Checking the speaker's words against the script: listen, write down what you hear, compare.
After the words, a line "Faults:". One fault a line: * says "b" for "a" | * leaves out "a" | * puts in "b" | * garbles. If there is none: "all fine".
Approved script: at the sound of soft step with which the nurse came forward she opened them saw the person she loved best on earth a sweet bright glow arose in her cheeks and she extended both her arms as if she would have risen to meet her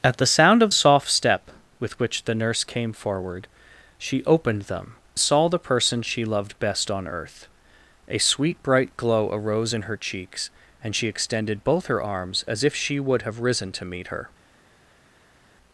at the sound of soft step with which the nurse came forward she opened them saw the person she loved best on earth a sweet bright glow arose in her cheeks and she extended both her arms as if she would have risen to meet her
Faults:
all fine